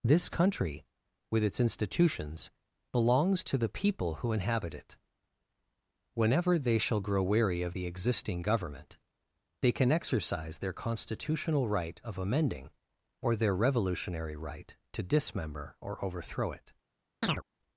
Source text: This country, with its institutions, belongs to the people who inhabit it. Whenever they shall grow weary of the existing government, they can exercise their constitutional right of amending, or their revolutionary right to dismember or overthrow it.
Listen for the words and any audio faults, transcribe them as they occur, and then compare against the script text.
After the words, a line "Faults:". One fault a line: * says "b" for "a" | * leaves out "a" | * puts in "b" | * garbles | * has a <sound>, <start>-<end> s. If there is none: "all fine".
This country, with its institutions, belongs to the people who inhabit it. Whenever they shall grow weary of the existing government, they can exercise their constitutional right of amending, or their revolutionary right to dismember or overthrow it.
Faults:
* has a chirp, 17.2-17.4 s